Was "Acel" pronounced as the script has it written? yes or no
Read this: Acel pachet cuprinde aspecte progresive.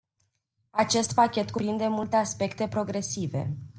no